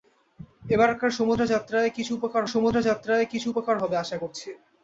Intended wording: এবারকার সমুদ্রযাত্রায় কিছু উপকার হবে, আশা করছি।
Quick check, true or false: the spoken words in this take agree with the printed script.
false